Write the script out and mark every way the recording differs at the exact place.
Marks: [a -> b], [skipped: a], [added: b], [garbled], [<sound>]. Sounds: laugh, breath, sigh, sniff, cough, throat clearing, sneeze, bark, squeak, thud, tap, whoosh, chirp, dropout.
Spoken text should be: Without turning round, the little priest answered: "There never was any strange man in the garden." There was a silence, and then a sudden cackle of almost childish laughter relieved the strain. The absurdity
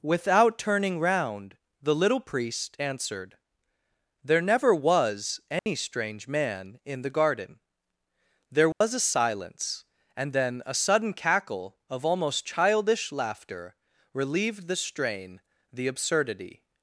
Without turning round, the little priest answered: "There never was any [dropout] strange man in the garden." There was [dropout] a silence, and then a sudden cackle of almost childish laughter relieved the strain. The absurdity